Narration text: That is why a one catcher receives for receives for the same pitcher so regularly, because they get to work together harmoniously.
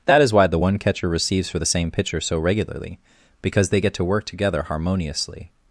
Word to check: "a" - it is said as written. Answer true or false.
false